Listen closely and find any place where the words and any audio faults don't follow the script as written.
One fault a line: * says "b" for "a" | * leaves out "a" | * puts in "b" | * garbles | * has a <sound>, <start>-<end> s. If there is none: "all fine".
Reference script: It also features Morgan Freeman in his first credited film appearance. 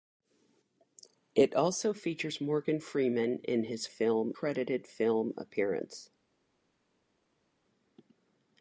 * says "film" for "first"